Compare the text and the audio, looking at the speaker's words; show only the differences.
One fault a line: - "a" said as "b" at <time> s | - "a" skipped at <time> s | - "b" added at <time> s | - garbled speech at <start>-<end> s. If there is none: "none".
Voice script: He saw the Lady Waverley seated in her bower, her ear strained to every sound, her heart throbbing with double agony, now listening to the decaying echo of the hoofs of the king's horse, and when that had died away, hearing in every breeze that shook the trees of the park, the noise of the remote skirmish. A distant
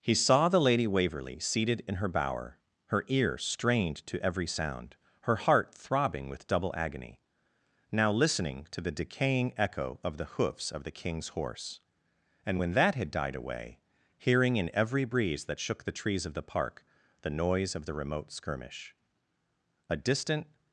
none